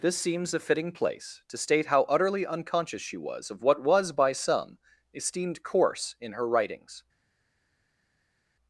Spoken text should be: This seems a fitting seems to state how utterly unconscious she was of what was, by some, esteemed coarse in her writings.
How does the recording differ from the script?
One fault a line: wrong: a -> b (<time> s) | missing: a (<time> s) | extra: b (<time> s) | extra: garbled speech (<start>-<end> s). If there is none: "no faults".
wrong: seems -> place (0.9 s)